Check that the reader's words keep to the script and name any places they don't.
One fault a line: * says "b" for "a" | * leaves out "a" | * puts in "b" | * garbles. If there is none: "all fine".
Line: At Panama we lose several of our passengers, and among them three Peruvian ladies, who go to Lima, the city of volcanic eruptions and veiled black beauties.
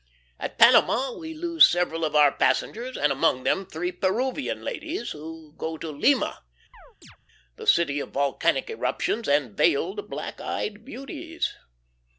* puts in "eyed"